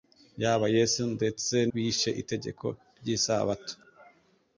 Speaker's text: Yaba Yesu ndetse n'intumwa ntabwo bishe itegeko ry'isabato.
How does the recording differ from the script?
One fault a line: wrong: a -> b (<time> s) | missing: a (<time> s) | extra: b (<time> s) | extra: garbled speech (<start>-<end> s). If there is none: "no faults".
missing: n'intumwa ntabwo (1.6 s)